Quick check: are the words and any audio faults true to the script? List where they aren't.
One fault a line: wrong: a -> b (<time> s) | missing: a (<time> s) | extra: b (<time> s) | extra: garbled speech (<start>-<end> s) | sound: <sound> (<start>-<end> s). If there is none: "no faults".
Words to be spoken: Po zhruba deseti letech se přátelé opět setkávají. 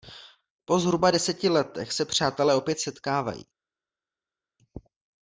no faults